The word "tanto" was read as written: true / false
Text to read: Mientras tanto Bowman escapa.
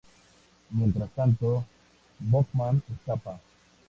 true